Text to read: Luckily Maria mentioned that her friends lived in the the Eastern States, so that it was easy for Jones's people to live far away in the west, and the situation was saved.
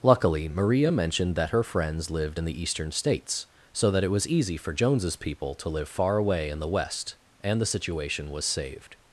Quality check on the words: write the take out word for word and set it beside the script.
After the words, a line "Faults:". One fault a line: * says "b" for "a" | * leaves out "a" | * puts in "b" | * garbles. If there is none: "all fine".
Luckily Maria mentioned that her friends lived in the Eastern States, so that it was easy for Jones's people to live far away in the west, and the situation was saved.
Faults:
* leaves out "the"